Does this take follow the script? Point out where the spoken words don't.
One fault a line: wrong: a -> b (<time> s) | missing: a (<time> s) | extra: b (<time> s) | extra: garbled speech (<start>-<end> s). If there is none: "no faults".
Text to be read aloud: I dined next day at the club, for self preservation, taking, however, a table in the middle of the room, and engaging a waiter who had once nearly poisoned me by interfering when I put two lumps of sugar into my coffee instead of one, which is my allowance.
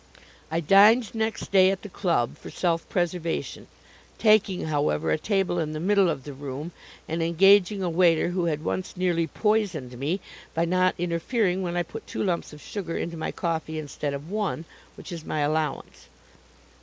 extra: not (10.7 s)